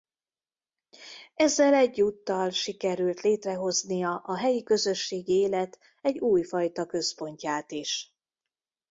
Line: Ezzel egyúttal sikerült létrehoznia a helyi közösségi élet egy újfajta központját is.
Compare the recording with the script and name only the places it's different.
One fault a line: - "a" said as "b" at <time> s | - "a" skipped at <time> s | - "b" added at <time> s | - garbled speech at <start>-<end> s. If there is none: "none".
none